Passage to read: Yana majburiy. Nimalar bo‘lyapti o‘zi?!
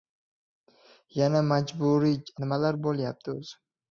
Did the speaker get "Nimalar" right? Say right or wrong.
right